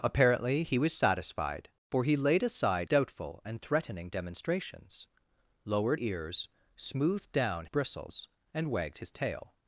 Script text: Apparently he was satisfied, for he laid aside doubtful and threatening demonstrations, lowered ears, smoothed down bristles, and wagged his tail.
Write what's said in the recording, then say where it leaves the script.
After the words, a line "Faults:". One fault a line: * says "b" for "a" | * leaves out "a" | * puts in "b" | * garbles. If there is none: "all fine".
Apparently he was satisfied, for he laid aside doubtful and threatening demonstrations, lowered ears, smoothed down bristles, and wagged his tail.
Faults:
all fine